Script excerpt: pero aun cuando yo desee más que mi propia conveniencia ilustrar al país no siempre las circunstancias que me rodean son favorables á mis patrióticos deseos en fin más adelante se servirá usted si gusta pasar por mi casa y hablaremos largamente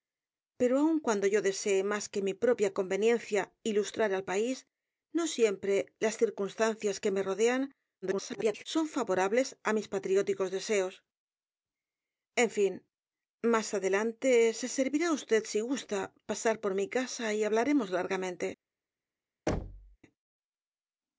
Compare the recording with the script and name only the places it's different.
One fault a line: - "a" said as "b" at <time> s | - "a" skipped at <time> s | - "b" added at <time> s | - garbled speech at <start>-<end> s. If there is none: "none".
- garbled speech at 8.0-8.6 s